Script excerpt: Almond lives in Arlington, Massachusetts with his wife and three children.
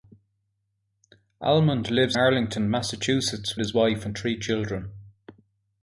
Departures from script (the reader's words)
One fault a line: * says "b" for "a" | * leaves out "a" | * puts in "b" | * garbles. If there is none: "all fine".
* leaves out "in"
* leaves out "with"